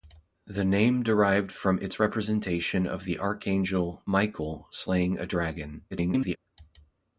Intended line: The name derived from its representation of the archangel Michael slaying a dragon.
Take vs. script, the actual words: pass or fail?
fail